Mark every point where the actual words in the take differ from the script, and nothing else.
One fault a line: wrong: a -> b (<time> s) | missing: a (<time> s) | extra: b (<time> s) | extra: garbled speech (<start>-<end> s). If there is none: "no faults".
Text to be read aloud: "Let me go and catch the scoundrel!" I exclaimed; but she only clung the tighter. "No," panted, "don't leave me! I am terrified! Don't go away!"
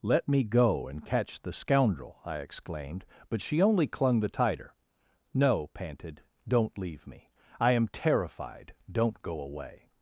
no faults